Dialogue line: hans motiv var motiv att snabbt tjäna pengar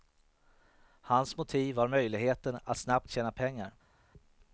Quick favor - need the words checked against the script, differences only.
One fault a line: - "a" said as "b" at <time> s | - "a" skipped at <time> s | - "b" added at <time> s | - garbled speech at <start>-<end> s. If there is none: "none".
- "motiv" said as "möjligheten" at 1.9 s